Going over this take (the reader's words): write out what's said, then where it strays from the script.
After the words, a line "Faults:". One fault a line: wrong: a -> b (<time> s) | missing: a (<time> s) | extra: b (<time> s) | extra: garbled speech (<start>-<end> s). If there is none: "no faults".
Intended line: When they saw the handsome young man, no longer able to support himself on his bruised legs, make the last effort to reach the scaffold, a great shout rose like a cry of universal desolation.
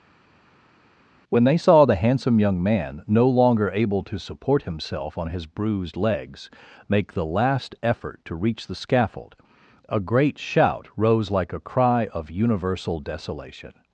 When they saw the handsome young man, no longer able to support himself on his bruised legs, make the last effort to reach the scaffold, a great shout rose like a cry of universal desolation.
Faults:
no faults